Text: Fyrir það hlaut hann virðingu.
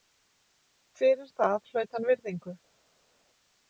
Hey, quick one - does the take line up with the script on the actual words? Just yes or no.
yes